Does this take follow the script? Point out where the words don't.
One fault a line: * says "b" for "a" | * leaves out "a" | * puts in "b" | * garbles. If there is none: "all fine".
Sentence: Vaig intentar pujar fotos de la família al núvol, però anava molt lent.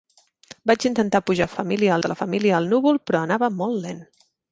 * says "família" for "fotos"